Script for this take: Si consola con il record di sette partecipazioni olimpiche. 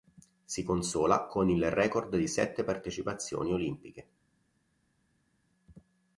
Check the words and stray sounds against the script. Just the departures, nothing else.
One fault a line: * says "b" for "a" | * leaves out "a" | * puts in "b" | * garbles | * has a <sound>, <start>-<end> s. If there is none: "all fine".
all fine